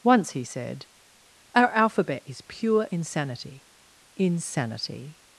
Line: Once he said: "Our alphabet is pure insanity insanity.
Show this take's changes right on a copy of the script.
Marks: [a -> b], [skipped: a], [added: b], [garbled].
Once he said: "Our alphabet is pure insanity insanity.